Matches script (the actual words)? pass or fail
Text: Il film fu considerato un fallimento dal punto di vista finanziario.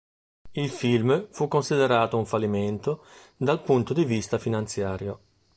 pass